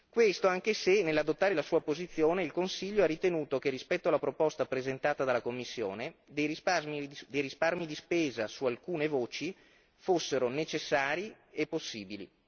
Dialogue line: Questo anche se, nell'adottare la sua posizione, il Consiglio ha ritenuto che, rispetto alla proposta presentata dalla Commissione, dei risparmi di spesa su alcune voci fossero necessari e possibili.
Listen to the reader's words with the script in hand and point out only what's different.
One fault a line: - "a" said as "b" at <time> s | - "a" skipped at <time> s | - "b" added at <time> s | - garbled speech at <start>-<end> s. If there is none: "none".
none